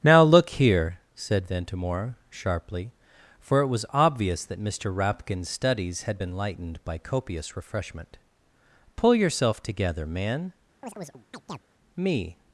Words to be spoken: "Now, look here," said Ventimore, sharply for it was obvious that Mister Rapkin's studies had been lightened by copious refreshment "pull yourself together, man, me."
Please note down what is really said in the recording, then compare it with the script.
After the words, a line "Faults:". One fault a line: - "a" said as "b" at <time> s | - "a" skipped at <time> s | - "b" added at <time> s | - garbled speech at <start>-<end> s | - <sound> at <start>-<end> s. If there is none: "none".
"Now, look here," said Ventimore, sharply for it was obvious that Mister Rapkin's studies had been lightened by copious refreshment "pull yourself together, man, me."
Faults:
- chirp at 10.8-11.6 s